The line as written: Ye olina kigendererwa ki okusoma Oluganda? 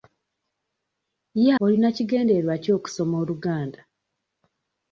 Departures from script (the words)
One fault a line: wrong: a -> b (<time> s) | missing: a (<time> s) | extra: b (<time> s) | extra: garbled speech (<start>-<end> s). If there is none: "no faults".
no faults